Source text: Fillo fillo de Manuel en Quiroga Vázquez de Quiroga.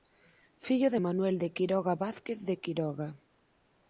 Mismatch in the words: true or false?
true